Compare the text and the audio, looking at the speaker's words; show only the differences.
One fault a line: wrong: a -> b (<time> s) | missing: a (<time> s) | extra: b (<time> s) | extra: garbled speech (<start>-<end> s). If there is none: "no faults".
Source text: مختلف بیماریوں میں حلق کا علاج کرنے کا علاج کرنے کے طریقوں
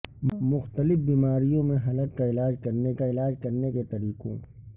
no faults